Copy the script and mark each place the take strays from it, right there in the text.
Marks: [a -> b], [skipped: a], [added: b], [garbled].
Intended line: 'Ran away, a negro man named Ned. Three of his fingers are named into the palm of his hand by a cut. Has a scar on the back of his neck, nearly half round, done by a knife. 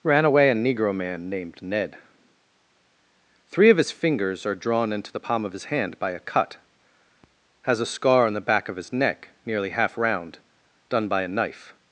'Ran away, a negro man named Ned. Three of his fingers are [named -> drawn] into the palm of his hand by a cut. Has a scar on the back of his neck, nearly half round, done by a knife.